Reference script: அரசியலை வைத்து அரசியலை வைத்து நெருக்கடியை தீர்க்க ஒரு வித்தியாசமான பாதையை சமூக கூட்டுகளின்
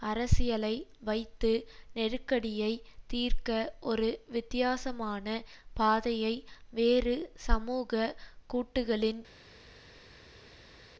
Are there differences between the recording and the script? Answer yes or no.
yes